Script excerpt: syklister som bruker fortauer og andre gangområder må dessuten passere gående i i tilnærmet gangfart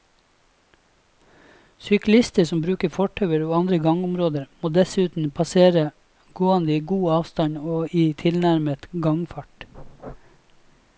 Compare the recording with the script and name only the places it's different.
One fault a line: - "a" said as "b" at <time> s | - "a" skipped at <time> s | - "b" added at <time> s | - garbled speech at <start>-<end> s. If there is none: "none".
- "god avstand og" added at 6.9 s